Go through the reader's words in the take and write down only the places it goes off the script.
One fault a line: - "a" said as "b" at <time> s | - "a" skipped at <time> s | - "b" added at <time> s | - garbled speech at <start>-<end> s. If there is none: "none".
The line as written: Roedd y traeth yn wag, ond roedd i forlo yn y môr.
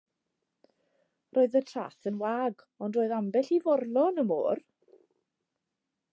- "ambell" added at 3.2 s